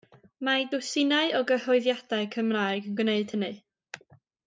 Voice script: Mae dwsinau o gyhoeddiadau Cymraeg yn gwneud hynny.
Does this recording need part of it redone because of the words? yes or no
no